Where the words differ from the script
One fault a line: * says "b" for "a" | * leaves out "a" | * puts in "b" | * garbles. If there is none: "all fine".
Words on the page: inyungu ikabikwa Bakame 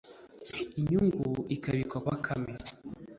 all fine